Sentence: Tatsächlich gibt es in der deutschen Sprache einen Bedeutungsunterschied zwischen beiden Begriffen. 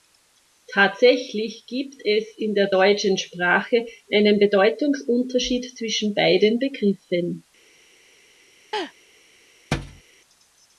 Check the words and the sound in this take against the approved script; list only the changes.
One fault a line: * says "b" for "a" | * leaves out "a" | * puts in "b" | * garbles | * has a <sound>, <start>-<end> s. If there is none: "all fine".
* has a laugh, 8.7-8.9 s
* has a thud, 9.7-10.0 s